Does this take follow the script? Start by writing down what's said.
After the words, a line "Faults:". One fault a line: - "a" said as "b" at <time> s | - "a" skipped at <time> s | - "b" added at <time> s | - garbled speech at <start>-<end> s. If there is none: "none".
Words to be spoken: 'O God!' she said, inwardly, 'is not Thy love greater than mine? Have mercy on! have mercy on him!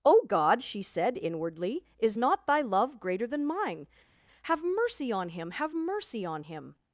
'O God!' she said, inwardly, 'is not Thy love greater than mine? Have mercy on him! have mercy on him!
Faults:
- "him" added at 5.3 s